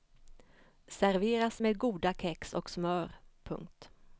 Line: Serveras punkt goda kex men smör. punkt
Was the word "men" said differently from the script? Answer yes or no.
yes